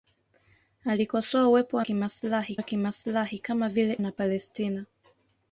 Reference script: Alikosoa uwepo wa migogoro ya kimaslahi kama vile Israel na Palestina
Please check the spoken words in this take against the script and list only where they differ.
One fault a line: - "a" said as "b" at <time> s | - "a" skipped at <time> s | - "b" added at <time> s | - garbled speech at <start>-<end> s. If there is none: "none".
- "migogoro" said as "kimaslahi" at 1.8 s
- "Israel" skipped at 4.0 s